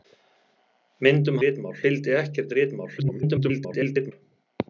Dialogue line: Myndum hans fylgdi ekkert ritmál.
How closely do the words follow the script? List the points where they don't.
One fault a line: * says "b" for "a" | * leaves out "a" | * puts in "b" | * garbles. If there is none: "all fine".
* says "ritmál" for "hans"
* garbles